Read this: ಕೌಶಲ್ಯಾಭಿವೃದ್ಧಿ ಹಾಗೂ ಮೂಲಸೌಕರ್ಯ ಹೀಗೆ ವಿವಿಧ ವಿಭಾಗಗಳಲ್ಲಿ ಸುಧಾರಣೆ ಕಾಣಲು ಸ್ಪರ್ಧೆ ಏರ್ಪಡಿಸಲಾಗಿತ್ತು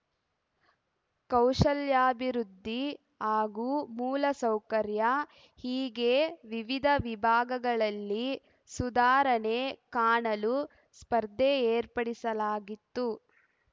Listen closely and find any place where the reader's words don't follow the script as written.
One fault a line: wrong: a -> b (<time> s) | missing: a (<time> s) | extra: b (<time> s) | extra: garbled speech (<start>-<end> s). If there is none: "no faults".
no faults